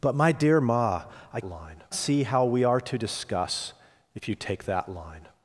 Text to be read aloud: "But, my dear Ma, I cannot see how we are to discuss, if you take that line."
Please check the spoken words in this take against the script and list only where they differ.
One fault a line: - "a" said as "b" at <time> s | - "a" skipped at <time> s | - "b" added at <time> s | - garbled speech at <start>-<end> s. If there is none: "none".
- "cannot" said as "line" at 1.4 s